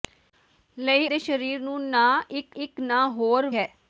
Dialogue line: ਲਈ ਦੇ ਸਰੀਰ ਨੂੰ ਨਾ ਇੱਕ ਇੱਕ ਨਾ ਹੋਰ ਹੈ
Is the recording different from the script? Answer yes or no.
no